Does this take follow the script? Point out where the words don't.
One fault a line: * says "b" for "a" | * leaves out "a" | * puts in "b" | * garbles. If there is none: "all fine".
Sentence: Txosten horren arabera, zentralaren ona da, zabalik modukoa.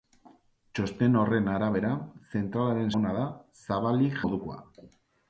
all fine